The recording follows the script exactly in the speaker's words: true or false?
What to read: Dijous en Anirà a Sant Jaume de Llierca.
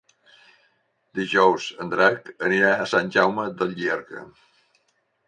false